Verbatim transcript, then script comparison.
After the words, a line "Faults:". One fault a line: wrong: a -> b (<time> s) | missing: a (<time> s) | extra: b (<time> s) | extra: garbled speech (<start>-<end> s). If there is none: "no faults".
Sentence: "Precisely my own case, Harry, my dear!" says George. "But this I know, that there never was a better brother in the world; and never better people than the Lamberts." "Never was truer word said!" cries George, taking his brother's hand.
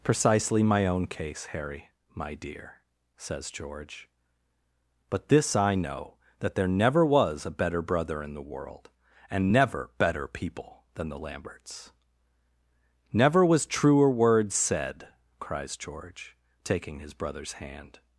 "Precisely my own case, Harry, my dear!" says George. "But this I know, that there never was a better brother in the world; and never better people than the Lamberts." "Never was truer word said!" cries George, taking his brother's hand.
Faults:
no faults